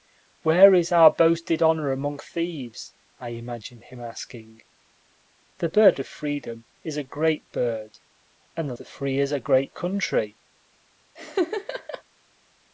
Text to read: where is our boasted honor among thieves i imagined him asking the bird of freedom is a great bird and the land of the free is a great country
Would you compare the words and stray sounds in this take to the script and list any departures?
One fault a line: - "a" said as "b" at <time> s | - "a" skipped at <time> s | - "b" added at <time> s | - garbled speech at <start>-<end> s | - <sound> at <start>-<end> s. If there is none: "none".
- "land of" skipped at 8.8 s
- laugh at 11.2-12.0 s